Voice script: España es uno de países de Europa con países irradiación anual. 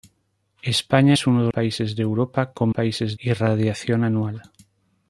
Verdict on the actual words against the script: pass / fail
pass